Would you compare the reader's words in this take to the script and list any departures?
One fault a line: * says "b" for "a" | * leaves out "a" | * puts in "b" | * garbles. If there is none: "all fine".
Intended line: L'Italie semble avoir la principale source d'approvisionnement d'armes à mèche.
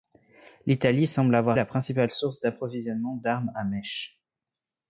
all fine